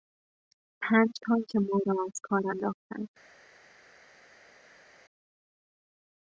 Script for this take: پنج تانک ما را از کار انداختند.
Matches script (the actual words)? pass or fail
pass